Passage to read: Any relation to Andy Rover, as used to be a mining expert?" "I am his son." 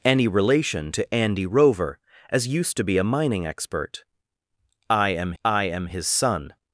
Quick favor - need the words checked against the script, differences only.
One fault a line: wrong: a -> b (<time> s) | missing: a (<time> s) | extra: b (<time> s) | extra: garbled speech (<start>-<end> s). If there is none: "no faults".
extra: I am (5.4 s)